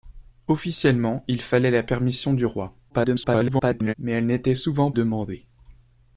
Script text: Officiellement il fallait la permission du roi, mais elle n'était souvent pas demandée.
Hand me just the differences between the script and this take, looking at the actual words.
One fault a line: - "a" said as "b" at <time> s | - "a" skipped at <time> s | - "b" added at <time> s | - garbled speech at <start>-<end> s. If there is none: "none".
- garbled speech at 2.9-3.9 s
- "pas" skipped at 4.9 s